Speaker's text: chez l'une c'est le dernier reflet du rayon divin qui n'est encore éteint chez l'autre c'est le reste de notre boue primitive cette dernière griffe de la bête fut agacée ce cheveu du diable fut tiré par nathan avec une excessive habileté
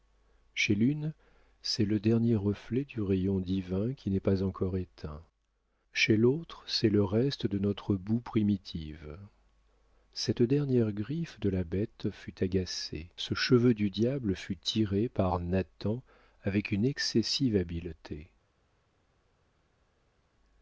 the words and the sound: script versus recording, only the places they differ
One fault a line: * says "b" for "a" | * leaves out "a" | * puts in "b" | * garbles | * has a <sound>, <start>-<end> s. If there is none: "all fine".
* puts in "pas"